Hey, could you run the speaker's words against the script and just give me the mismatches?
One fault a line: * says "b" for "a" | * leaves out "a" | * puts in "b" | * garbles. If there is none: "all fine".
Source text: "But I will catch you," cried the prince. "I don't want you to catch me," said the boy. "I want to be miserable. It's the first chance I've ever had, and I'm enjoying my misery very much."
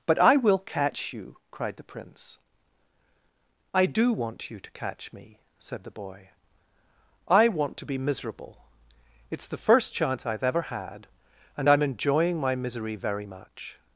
* says "do" for "don't"